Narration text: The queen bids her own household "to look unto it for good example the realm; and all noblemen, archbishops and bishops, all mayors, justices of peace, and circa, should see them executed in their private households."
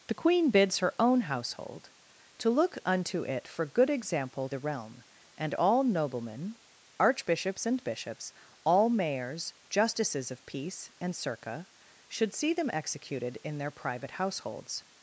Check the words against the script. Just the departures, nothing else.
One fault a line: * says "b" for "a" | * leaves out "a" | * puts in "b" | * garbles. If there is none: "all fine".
all fine